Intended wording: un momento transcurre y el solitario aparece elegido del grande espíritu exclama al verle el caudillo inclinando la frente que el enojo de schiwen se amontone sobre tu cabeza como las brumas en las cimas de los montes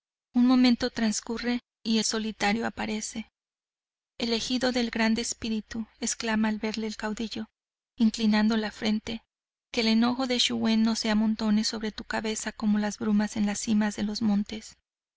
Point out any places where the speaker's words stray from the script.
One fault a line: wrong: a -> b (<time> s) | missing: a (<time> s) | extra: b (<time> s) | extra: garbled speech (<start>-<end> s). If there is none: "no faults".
extra: no (10.8 s)